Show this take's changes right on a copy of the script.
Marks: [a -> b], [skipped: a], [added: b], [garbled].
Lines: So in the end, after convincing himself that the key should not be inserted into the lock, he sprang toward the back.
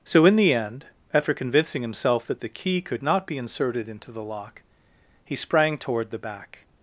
So in the end, after convincing himself that the key [should -> could] not be inserted into the lock, he sprang toward the back.